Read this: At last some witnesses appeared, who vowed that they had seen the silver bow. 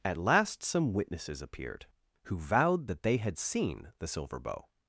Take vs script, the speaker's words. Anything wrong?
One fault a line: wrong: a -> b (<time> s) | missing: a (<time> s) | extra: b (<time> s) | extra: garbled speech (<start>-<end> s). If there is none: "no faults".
no faults